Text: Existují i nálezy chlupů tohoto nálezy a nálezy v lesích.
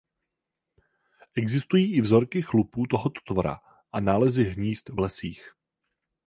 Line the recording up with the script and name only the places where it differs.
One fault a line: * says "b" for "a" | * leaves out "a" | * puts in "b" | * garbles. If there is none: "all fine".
* says "vzorky" for "nálezy"
* says "tvora" for "nálezy"
* puts in "hnízd"